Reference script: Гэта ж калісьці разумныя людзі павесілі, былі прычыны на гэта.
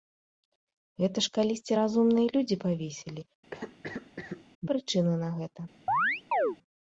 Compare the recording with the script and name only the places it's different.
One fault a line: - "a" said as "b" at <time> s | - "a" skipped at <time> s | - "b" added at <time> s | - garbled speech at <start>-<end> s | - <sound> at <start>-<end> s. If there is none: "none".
- "былі" skipped at 3.3 s
- cough at 3.5-4.5 s
- chirp at 5.9-6.6 s